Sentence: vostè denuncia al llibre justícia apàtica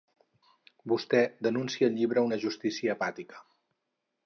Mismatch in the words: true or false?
true